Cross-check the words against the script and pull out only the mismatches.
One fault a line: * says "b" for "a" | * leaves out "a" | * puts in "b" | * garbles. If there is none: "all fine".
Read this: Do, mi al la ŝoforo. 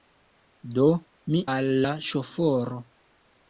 all fine